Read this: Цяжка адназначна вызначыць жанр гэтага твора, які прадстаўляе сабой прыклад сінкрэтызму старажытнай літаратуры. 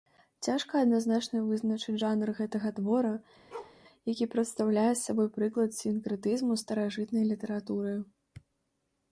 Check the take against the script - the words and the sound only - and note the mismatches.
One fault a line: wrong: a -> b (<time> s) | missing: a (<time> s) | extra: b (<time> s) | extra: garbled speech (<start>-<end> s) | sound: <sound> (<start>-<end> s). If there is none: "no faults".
sound: bark (3.5-3.8 s)